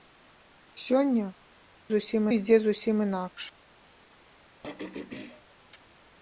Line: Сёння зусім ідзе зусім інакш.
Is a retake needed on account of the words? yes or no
no